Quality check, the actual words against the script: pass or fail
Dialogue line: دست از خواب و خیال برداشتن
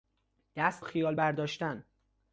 fail